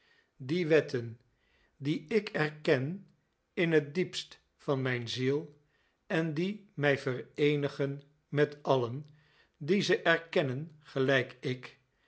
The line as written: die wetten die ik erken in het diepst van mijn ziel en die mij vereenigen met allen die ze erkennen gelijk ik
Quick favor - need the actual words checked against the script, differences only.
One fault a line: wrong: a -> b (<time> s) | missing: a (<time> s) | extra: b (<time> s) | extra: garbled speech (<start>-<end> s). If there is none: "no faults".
no faults